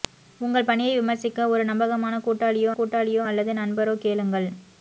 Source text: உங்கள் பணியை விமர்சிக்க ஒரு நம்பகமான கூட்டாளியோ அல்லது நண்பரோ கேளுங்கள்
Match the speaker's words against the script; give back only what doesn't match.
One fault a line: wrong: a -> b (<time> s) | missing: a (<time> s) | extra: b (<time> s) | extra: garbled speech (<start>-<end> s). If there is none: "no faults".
extra: கூட்டாளியோ (2.8 s)